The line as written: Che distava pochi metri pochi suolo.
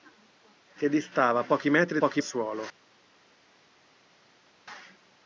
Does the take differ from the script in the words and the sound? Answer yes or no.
no